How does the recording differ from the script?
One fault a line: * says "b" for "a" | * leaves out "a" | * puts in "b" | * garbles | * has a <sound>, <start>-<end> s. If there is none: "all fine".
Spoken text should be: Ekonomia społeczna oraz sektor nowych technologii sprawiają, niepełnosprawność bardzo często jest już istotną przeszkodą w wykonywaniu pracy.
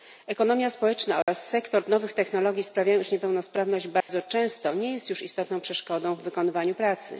* has a dropout, 1.2-1.3 s
* puts in "iż"
* has a dropout, 4.0-4.1 s
* puts in "nie"